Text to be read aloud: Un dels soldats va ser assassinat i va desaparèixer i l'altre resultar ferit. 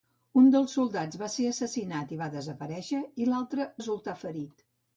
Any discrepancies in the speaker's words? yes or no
no